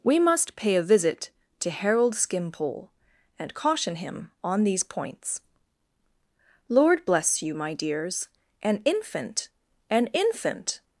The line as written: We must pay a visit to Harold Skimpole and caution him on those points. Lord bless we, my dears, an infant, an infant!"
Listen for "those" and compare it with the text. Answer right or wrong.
wrong